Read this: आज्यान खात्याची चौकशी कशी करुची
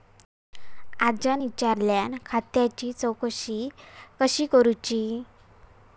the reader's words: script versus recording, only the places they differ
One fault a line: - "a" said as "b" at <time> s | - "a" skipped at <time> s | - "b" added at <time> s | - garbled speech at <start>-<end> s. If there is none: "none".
- "विचारल्यान" added at 1.4 s